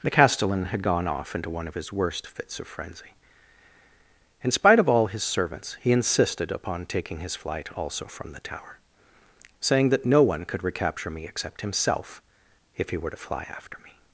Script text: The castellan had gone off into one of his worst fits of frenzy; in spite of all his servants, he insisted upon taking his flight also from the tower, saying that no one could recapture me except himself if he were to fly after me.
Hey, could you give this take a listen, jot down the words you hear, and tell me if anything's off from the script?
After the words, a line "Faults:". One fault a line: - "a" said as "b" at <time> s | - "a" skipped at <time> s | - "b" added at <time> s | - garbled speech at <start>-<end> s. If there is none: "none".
The castellan had gone off into one of his worst fits of frenzy; in spite of all his servants, he insisted upon taking his flight also from the tower, saying that no one could recapture me except himself if he were to fly after me.
Faults:
none